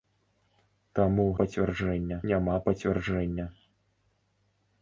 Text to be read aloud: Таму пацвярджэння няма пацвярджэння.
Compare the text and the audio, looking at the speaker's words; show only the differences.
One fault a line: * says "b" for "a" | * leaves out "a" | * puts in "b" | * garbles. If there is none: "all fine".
all fine